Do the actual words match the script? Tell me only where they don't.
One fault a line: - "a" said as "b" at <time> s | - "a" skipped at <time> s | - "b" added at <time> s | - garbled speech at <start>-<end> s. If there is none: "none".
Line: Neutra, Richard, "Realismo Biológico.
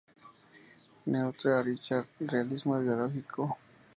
none